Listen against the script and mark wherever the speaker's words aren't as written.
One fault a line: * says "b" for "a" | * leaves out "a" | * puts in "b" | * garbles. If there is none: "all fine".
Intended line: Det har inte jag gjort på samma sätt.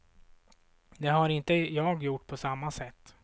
all fine